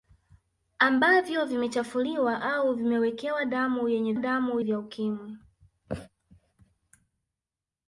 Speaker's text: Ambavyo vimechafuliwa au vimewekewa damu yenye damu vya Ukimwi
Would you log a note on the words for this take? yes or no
no